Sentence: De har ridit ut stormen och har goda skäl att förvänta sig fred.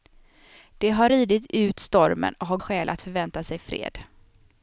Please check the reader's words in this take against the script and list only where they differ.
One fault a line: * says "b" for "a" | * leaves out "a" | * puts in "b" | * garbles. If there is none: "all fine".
* leaves out "goda"